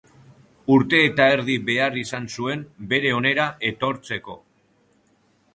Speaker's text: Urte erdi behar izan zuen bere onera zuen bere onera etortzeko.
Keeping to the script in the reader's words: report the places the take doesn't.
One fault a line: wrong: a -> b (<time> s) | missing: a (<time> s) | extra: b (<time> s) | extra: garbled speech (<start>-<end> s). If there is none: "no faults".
extra: eta (1.1 s)
missing: zuen bere onera (3.5 s)